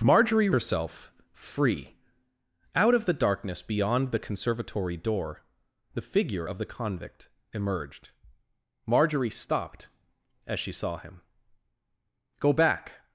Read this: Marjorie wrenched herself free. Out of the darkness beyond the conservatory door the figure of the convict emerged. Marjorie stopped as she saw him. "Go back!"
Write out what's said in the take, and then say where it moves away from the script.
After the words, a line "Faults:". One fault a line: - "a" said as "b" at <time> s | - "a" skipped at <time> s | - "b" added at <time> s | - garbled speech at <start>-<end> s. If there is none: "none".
Marjorie herself free. Out of the darkness beyond the conservatory door the figure of the convict emerged. Marjorie stopped as she saw him. "Go back!"
Faults:
- "wrenched" skipped at 0.5 s